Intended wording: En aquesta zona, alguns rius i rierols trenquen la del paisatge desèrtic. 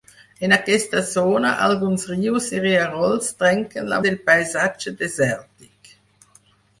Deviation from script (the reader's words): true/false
false